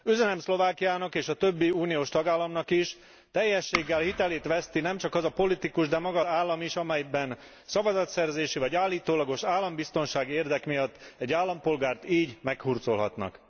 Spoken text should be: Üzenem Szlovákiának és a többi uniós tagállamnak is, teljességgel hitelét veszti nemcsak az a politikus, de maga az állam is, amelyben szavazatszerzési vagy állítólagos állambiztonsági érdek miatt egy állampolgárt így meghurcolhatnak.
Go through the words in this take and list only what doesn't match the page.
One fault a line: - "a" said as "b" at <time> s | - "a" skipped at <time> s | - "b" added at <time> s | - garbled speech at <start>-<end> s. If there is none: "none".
- "az" skipped at 6.2 s